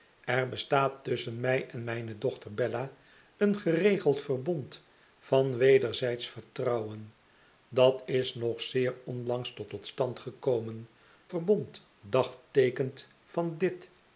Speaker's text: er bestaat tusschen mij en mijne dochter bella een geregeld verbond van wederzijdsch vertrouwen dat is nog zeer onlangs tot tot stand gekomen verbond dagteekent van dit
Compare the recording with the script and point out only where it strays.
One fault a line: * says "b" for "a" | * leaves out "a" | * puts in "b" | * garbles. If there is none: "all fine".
all fine